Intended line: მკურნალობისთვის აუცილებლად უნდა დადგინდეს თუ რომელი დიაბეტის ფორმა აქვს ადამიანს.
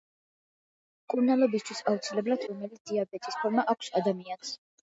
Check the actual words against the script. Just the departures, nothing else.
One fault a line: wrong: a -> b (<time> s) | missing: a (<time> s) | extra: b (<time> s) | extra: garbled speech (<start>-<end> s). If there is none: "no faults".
missing: უნდა დადგინდეს თუ (2.5 s)